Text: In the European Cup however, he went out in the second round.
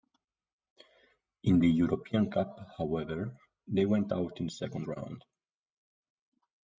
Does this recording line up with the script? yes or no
no